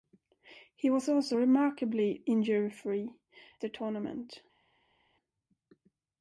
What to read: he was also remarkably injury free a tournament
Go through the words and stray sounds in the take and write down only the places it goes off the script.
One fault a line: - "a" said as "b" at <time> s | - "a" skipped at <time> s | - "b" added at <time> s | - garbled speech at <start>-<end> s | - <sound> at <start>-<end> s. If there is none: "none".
none